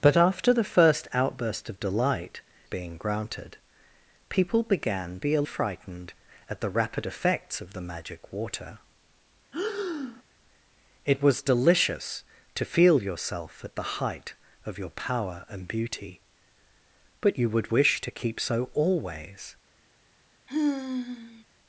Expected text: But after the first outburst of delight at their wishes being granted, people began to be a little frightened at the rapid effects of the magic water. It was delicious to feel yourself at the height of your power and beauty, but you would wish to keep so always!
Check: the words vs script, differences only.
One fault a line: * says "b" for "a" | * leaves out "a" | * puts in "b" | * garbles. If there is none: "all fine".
* leaves out "at their wishes"
* leaves out "to"
* leaves out "little"